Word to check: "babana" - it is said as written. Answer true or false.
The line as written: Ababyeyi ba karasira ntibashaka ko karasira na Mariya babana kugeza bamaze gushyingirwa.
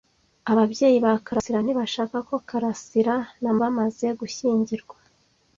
false